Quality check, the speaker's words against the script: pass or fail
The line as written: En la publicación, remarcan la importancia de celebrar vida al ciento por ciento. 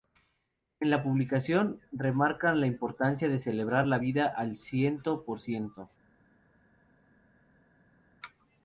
fail